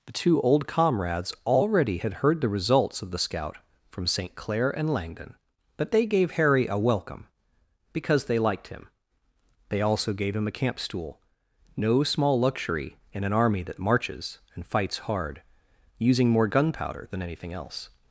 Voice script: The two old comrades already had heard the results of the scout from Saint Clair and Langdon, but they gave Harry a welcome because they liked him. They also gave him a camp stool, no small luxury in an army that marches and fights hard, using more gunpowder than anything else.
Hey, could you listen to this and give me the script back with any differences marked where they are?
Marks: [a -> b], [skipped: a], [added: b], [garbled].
The two old comrades already had heard the results of the scout from Saint Clair and Langdon, but they gave Harry a welcome because they liked him. They also gave him a camp stool, no small luxury in an army that marches and fights hard, using more gunpowder than anything else.